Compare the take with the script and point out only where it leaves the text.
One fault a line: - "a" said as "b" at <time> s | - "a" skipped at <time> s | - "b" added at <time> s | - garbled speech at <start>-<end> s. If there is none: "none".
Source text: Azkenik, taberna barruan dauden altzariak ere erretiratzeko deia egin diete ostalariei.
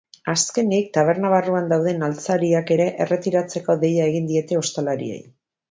none